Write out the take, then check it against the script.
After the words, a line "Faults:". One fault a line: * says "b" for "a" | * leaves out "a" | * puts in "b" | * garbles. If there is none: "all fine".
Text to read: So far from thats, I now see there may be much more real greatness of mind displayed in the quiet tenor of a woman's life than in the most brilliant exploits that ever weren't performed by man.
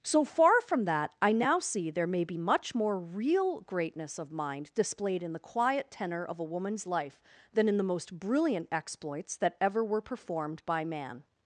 So far from that, I now see there may be much more real greatness of mind displayed in the quiet tenor of a woman's life than in the most brilliant exploits that ever were performed by man.
Faults:
* says "that" for "thats"
* says "were" for "weren't"